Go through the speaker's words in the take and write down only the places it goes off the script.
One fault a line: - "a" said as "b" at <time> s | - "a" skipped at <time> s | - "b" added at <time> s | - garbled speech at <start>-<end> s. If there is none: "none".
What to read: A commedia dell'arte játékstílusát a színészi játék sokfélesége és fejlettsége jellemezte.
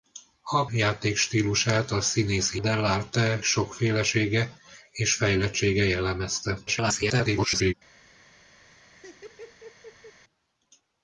- "commedia dell'arte" skipped at 0.7 s
- "játék" said as "dell'arte" at 2.6 s
- garbled speech at 6.7-7.7 s